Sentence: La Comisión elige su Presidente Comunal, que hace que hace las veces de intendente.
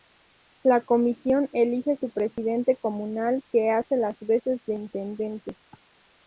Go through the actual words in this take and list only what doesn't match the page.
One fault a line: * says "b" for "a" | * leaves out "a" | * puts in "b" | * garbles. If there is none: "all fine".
* leaves out "que hace"